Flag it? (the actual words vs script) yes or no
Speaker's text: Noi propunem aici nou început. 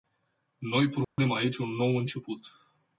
yes